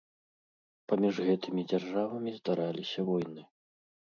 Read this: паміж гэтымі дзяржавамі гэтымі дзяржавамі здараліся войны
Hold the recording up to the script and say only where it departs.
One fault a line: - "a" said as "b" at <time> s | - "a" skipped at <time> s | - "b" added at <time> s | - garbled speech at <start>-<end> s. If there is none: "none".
- "гэтымі дзяржавамі" skipped at 2.4 s